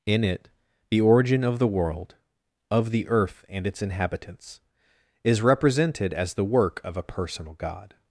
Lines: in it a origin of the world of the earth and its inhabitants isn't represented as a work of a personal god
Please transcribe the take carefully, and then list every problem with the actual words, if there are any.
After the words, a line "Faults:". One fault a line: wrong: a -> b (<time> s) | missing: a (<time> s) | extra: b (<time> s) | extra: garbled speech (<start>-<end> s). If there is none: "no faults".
in it the origin of the world of the earth and its inhabitants is represented as the work of a personal god
Faults:
wrong: a -> the (0.9 s)
wrong: isn't -> is (5.2 s)
wrong: a -> the (6.3 s)